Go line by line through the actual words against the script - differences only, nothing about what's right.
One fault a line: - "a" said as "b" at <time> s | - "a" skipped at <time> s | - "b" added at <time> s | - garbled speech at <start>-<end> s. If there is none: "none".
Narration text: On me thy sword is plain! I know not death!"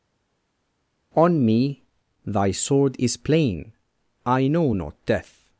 none